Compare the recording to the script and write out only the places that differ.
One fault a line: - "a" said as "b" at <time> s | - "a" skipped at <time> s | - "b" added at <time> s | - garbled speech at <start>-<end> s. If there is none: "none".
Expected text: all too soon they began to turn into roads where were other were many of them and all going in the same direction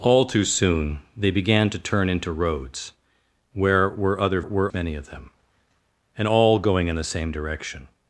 none